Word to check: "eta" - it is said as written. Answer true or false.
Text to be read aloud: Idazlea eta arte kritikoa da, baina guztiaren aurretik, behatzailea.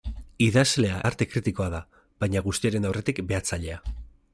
false